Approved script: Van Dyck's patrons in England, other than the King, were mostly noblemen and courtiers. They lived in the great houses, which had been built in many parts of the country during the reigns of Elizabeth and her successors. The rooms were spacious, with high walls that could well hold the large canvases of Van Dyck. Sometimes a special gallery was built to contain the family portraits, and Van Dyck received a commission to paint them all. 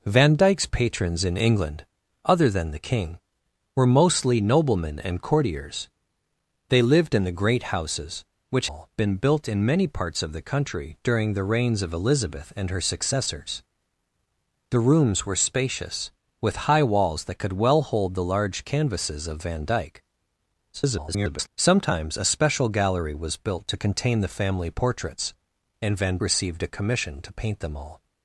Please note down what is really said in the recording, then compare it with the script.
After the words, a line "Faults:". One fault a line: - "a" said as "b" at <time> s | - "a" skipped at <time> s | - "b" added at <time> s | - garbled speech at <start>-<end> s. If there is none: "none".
Van Dyck's patrons in England, other than the King, were mostly noblemen and courtiers. They lived in the great houses, which all been built in many parts of the country during the reigns of Elizabeth and her successors. The rooms were spacious, with high walls that could well hold the large canvases of Van Dyck. [garbled] Sometimes a special gallery was built to contain the family portraits, and Van Received a commission to paint them all.
Faults:
- "had" said as "all" at 8.6 s
- garbled speech at 20.7-21.5 s
- "Dyck" skipped at 26.2 s